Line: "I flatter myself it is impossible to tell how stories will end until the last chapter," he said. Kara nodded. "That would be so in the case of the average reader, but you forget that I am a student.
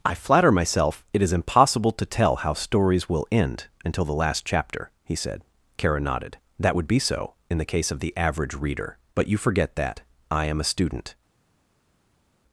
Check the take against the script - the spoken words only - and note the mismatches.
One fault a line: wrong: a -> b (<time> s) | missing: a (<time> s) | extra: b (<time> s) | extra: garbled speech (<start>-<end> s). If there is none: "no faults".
no faults